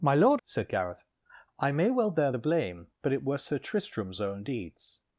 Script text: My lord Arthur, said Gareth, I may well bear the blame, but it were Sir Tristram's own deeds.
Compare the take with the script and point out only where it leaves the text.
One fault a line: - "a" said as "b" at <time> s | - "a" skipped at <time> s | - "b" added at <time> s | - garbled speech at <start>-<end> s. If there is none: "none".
- "Arthur" skipped at 0.4 s